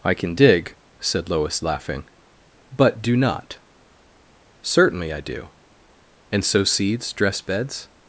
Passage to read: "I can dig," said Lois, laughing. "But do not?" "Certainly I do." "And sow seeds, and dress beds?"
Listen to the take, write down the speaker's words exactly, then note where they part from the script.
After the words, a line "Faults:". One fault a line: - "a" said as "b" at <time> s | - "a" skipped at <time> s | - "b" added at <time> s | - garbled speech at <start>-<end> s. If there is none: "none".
"I can dig," said Lois, laughing. "But do not?" "Certainly I do." "And sow seeds, dress beds?"
Faults:
- "and" skipped at 7.1 s